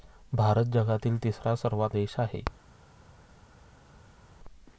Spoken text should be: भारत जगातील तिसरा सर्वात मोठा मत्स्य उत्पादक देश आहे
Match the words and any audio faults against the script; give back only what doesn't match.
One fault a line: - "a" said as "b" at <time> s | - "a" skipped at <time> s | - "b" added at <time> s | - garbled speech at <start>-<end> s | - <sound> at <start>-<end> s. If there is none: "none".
- "मोठा मत्स्य उत्पादक" skipped at 1.9 s